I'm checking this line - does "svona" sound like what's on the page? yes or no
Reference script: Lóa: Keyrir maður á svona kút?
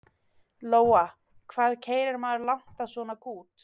yes